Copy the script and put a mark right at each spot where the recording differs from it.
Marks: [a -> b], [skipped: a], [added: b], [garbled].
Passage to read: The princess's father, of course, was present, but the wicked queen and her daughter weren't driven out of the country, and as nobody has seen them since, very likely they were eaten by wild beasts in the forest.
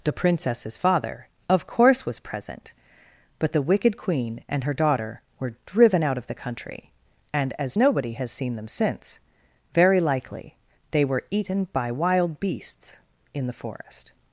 The princess's father, of course, was present, but the wicked queen and her daughter [weren't -> were] driven out of the country, and as nobody has seen them since, very likely they were eaten by wild beasts in the forest.